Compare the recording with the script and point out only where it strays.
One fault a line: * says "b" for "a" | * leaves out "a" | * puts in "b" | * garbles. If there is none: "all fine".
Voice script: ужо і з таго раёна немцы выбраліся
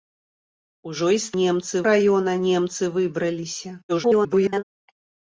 * says "немцы" for "таго"
* garbles